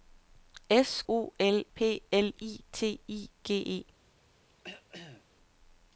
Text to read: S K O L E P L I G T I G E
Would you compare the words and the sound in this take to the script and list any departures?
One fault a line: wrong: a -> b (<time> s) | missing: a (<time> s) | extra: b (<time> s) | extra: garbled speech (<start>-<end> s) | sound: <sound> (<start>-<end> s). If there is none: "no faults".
missing: K (1.0 s)
missing: E (1.6 s)
missing: G (2.6 s)
sound: throat clearing (4.5-5.2 s)